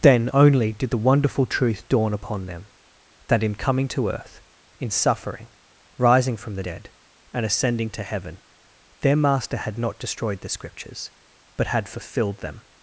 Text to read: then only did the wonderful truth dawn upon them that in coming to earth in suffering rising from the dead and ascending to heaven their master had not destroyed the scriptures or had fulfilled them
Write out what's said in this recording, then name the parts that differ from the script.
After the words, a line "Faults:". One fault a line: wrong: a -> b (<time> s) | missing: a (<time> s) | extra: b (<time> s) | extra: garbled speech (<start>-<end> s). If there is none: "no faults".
then only did the wonderful truth dawn upon them that in coming to earth in suffering rising from the dead and ascending to heaven their master had not destroyed the scriptures but had fulfilled them
Faults:
wrong: or -> but (11.6 s)